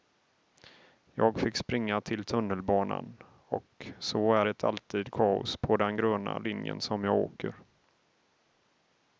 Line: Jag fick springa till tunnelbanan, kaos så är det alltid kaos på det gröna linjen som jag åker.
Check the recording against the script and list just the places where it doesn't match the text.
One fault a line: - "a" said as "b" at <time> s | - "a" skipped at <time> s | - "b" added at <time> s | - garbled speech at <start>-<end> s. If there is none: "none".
- "kaos" said as "och" at 3.5 s
- "det" said as "den" at 5.8 s